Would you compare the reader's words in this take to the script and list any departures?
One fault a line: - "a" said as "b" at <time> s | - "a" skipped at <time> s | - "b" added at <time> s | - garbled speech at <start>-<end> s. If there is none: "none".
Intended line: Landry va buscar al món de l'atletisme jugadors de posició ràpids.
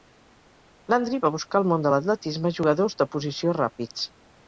none